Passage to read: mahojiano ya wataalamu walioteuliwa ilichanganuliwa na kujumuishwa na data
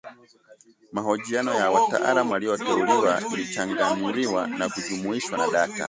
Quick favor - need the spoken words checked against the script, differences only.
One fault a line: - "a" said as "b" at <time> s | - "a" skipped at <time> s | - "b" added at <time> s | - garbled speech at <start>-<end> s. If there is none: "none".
none